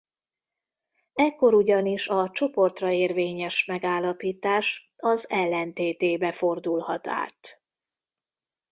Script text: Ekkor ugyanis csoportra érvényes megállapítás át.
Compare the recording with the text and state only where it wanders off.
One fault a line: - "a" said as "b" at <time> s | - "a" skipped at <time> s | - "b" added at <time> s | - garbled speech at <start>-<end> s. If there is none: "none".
- "a" added at 2.0 s
- "az ellentétébe fordulhat" added at 5.0 s